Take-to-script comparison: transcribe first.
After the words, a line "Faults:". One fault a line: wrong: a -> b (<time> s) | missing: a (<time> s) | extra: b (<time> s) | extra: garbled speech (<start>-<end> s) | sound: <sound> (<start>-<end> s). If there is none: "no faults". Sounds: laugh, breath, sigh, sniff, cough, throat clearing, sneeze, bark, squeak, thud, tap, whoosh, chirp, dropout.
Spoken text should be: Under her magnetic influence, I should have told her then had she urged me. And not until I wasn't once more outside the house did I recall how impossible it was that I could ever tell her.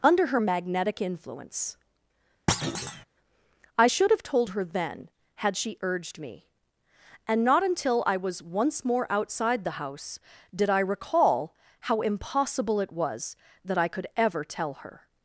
Under her magnetic influence, I should have told her then had she urged me. And not until I was once more outside the house did I recall how impossible it was that I could ever tell her.
Faults:
sound: thud (2.5-3.0 s)
wrong: wasn't -> was (8.2 s)